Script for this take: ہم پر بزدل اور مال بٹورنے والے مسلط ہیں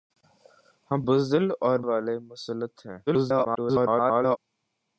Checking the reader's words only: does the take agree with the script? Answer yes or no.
no